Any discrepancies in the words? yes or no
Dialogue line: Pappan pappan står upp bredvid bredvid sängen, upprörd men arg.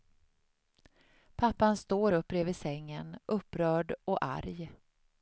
yes